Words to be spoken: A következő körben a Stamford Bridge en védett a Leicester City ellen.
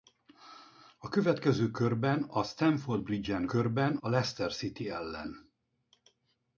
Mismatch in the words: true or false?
true